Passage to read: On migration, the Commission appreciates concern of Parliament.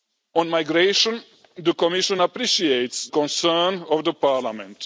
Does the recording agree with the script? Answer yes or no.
yes